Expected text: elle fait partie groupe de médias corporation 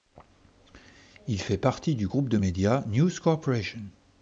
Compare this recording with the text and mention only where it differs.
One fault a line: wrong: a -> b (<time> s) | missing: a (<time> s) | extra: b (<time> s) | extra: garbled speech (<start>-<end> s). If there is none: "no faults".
wrong: elle -> il (1.3 s)
extra: du (1.9 s)
extra: news (2.9 s)